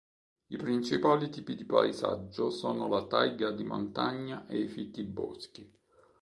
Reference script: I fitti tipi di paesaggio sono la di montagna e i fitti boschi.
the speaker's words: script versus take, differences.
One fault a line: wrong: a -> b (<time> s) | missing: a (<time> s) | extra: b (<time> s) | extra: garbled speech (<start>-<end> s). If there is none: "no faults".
wrong: fitti -> principali (0.6 s)
extra: taiga (3.0 s)